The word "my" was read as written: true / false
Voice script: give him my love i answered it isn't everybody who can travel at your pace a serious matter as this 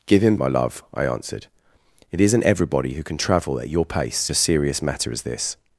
true